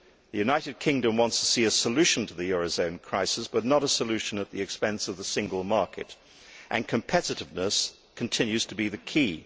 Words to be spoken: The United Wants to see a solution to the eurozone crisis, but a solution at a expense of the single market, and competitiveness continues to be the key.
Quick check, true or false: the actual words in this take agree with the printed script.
false